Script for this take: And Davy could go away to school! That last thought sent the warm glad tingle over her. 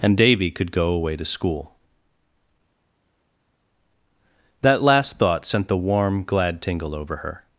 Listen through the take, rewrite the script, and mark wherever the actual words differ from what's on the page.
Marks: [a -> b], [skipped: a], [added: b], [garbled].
And Davy could go away to school! That last thought sent the warm glad tingle over her.